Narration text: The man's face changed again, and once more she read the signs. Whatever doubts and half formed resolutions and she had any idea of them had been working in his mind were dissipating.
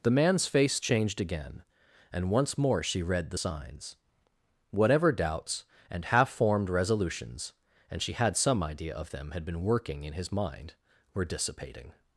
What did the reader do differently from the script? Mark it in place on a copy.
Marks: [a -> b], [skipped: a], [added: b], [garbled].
The man's face changed again, and once more she read the signs. Whatever doubts and half formed resolutions and she had [any -> some] idea of them had been working in his mind were dissipating.